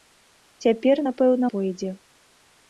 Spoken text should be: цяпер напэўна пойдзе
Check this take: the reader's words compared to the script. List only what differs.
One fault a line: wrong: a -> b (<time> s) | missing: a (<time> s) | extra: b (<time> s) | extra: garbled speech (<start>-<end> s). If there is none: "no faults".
no faults